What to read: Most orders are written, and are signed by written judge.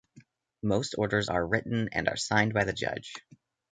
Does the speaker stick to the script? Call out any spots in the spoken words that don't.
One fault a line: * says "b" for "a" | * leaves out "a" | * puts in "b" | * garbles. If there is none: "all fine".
* says "the" for "written"